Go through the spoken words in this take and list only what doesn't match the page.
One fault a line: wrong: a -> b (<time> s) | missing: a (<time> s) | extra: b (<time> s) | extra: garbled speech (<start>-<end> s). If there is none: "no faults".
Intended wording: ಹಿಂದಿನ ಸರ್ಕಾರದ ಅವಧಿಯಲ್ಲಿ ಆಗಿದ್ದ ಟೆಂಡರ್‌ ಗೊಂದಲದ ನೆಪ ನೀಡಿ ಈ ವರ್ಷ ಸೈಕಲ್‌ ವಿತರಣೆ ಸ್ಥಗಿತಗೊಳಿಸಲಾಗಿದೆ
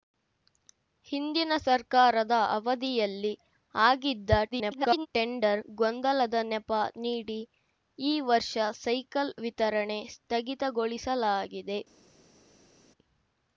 extra: garbled speech (4.5-5.1 s)